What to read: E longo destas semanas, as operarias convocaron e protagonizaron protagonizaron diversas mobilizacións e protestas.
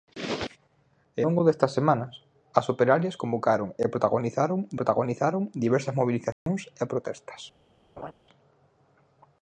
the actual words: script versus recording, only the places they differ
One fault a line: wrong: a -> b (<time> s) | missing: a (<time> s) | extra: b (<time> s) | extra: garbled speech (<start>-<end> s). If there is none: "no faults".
no faults